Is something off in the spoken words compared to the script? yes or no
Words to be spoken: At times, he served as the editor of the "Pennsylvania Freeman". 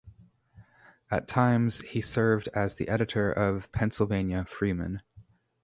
yes